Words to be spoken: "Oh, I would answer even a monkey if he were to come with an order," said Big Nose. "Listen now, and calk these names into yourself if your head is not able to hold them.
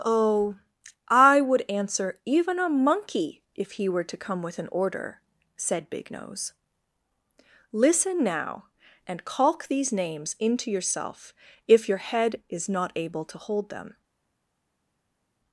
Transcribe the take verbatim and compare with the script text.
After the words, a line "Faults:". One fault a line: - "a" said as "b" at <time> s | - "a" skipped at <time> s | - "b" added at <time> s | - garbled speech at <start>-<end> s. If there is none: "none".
"Oh, I would answer even a monkey if he were to come with an order," said Big Nose. "Listen now, and calk these names into yourself if your head is not able to hold them.
Faults:
none